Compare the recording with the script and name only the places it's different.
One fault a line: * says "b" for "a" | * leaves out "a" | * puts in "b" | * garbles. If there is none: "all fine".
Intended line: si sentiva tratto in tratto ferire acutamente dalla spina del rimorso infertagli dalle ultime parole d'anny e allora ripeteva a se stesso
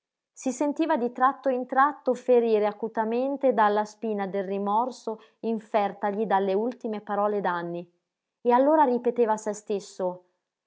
* puts in "di"